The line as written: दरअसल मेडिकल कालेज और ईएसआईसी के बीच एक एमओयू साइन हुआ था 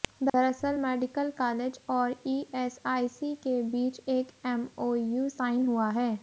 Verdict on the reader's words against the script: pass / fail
fail